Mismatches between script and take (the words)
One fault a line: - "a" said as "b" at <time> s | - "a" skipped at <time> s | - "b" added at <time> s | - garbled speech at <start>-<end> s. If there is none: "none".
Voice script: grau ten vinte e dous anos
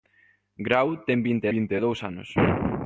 - "vinte" added at 1.5 s